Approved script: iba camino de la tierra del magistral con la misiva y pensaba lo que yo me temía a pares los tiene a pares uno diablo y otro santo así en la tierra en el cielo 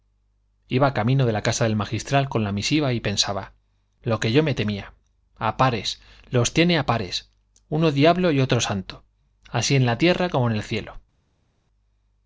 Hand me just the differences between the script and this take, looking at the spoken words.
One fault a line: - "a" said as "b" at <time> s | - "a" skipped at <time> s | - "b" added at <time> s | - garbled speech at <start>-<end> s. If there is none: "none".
- "tierra" said as "casa" at 1.4 s
- "como" added at 10.3 s